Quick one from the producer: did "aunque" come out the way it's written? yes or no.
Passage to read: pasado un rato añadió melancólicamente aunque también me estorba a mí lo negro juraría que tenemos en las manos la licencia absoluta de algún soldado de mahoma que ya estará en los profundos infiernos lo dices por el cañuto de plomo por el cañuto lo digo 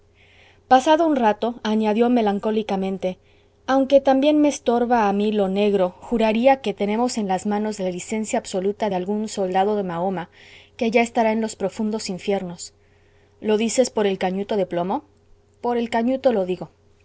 yes